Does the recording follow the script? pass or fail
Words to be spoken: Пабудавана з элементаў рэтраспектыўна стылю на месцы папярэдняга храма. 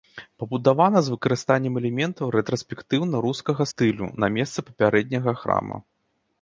fail